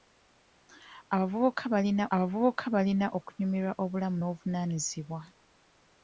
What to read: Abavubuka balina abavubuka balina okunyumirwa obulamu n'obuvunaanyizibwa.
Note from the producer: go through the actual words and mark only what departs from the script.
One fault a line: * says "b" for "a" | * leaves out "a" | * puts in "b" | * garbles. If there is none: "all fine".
all fine